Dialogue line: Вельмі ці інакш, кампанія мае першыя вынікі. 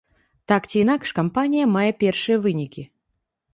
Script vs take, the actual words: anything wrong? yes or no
yes